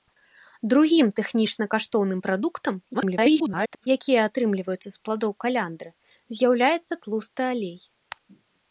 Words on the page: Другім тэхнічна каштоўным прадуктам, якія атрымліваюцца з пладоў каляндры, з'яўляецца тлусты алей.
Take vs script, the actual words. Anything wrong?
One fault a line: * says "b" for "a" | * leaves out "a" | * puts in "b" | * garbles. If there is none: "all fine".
* garbles